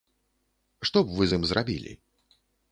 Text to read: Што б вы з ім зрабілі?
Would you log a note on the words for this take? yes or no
no